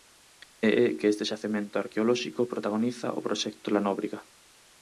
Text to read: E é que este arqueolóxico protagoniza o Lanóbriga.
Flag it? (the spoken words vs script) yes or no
yes